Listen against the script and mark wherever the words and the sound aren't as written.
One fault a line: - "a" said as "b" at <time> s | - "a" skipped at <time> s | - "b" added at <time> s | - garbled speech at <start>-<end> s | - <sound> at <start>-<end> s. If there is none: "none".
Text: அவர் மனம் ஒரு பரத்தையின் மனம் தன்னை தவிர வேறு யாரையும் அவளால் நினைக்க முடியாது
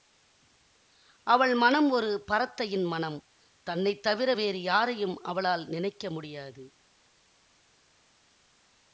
- "அவர்" said as "அவள்" at 1.3 s